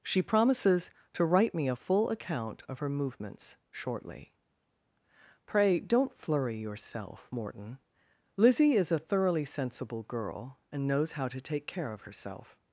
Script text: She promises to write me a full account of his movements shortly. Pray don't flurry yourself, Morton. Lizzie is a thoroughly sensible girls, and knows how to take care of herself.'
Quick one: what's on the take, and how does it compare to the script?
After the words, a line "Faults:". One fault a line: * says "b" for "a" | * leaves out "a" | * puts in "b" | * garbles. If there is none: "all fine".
She promises to write me a full account of her movements shortly. Pray don't flurry yourself, Morton. Lizzie is a thoroughly sensible girl, and knows how to take care of herself.'
Faults:
* says "her" for "his"
* says "girl" for "girls"